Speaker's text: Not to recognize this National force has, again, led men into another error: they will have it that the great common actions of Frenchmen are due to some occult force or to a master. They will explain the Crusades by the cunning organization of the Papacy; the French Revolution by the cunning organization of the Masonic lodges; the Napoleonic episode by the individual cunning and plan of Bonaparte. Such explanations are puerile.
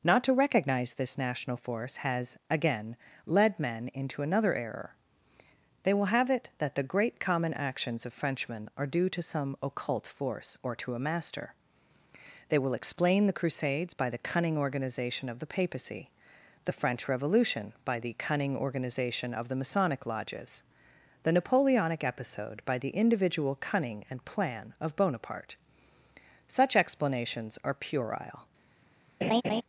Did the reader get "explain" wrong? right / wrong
right